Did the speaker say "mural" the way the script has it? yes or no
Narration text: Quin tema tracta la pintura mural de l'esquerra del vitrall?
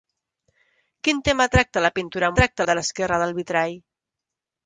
no